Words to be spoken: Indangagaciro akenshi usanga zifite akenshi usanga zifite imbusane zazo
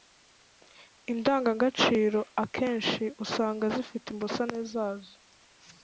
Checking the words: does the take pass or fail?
fail